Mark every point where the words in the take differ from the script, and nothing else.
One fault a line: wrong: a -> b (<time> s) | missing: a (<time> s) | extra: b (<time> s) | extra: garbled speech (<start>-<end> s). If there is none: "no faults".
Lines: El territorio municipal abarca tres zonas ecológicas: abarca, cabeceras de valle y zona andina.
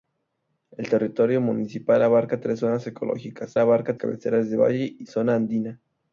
no faults